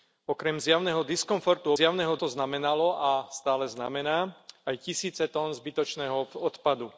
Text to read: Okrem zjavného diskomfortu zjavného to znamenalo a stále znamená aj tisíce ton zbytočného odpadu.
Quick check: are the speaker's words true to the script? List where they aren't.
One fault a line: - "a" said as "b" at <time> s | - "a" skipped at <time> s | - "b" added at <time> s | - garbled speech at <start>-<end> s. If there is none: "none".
none